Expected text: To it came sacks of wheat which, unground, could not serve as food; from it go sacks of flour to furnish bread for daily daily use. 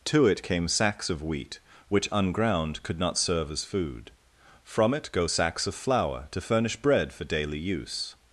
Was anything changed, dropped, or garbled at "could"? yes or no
no